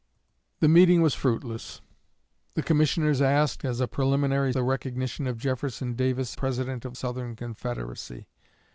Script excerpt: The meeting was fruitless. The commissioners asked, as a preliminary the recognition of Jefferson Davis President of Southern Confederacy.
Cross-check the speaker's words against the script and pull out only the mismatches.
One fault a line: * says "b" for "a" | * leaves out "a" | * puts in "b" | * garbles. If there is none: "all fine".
all fine